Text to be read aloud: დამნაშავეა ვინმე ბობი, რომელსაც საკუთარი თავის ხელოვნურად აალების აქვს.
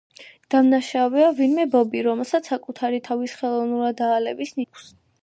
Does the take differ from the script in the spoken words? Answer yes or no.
no